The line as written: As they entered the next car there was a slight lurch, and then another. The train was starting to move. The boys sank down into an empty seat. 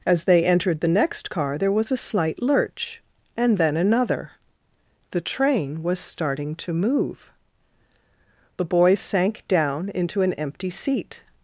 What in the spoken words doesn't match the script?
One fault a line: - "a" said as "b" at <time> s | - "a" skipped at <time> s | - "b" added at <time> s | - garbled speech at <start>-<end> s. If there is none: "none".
none